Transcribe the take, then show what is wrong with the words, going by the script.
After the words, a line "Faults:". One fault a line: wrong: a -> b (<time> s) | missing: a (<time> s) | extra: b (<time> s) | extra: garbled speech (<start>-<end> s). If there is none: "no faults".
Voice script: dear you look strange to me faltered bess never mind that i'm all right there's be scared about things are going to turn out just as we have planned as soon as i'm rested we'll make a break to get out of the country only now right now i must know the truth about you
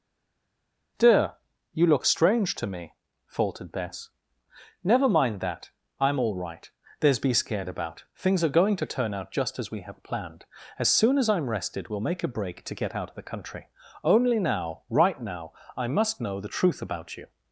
dear you look strange to me faltered bess never mind that i'm all right there's be scared about things are going to turn out just as we have planned as soon as i'm rested we'll make a break to get out of the country only now right now i must know the truth about you
Faults:
no faults